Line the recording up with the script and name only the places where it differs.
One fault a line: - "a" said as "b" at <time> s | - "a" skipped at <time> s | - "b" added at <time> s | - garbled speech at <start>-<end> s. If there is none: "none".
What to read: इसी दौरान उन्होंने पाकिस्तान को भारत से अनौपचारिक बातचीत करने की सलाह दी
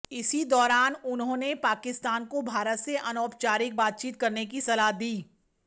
none